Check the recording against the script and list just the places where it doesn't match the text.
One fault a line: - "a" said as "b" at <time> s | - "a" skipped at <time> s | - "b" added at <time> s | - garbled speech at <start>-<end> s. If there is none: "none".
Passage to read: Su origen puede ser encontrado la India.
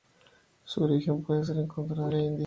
none